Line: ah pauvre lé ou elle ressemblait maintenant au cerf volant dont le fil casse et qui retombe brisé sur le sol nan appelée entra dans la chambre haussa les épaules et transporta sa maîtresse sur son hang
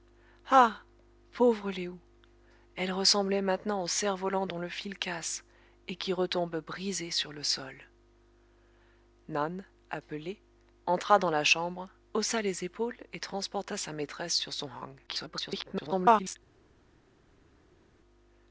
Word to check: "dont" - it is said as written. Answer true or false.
true